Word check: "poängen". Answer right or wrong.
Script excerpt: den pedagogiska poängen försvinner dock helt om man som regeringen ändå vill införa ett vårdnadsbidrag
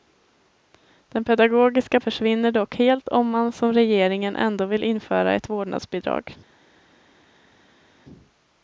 wrong